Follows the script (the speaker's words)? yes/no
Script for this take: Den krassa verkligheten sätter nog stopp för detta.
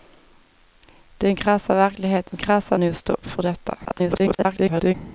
no